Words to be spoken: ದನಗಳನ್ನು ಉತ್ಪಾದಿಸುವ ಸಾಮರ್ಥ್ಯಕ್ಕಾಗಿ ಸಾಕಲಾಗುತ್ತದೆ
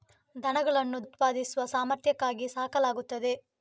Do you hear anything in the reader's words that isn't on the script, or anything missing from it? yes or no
no